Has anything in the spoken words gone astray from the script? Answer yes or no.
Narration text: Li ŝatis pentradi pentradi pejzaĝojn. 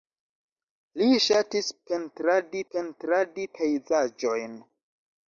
no